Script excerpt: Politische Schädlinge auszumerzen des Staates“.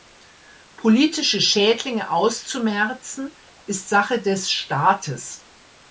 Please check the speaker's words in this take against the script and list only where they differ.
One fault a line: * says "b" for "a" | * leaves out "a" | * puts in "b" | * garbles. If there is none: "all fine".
* puts in "ist Sache"